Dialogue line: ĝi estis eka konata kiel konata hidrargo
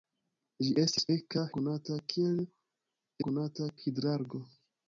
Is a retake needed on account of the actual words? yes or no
no